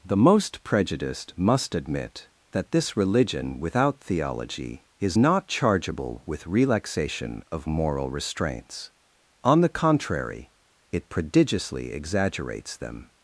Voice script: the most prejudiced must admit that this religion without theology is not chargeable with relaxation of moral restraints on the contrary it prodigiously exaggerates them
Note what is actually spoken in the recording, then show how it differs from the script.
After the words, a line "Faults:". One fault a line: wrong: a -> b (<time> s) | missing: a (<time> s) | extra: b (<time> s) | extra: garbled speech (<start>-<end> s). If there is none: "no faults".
the most prejudiced must admit that this religion without theology is not chargeable with relaxation of moral restraints on the contrary it prodigiously exaggerates them
Faults:
no faults